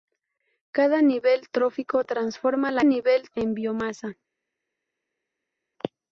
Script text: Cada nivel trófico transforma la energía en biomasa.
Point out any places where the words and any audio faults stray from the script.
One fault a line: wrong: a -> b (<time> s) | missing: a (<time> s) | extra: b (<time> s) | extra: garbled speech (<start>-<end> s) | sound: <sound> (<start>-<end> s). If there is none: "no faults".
wrong: energía -> nivel (2.8 s)